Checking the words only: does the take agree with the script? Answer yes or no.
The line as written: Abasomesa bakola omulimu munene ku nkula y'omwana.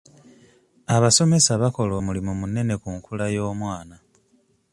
yes